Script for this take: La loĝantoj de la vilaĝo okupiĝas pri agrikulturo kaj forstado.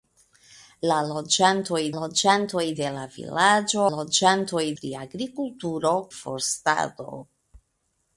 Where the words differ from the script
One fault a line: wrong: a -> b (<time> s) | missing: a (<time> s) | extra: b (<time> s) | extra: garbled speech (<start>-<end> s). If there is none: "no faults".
extra: loĝantoj (2.0 s)
wrong: okupiĝas -> loĝantoj (3.9 s)
missing: kaj (5.9 s)